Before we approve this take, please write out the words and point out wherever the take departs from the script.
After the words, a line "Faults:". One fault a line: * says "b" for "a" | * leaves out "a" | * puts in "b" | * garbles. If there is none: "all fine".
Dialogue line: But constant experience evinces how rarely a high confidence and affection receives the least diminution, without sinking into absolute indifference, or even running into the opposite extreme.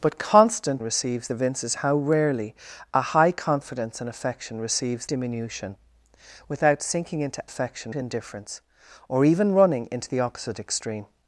But constant receives evinces how rarely a high confidence and affection receives diminution, without sinking into affection indifference, or even running into the opposite extreme.
Faults:
* says "receives" for "experience"
* leaves out "the least"
* says "affection" for "absolute"